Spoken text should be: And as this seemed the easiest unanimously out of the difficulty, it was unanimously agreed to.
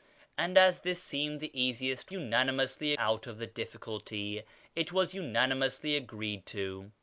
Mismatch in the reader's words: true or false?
false